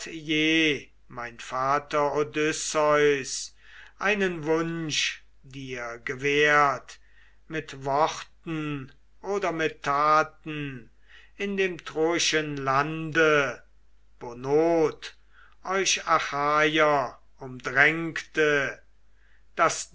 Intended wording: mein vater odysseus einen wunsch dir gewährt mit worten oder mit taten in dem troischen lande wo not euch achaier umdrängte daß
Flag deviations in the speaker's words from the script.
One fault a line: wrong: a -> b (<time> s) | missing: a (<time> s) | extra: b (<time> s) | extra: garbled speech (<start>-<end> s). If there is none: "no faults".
no faults